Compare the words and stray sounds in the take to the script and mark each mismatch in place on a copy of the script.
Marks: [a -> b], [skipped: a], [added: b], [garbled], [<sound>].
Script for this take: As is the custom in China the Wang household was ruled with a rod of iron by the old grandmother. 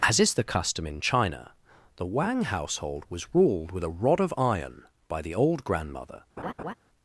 As is the custom in China the Wang household was ruled with a rod of iron by the old grandmother. [laugh]